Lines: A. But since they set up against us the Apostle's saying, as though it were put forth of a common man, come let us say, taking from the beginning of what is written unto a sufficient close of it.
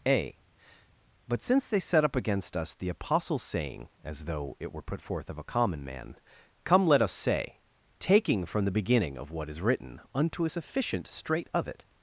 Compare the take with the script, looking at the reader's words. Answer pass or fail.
fail